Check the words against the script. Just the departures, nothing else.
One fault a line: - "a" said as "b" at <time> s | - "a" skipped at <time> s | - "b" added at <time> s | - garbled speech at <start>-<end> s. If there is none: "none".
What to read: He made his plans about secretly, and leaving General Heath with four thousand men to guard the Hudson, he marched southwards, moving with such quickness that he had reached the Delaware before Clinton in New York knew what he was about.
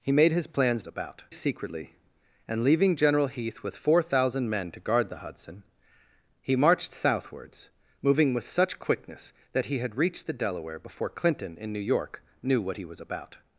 none